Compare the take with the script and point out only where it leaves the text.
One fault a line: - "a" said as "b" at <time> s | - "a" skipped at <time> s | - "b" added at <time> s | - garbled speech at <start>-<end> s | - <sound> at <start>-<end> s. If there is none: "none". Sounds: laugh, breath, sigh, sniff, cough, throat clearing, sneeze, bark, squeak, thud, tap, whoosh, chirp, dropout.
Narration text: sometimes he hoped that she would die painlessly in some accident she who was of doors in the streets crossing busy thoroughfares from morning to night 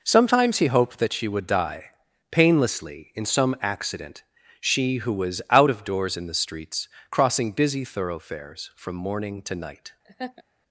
- "out" added at 5.5 s
- laugh at 10.0-10.4 s